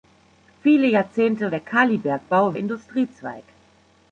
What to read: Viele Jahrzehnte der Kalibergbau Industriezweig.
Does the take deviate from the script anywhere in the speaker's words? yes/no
no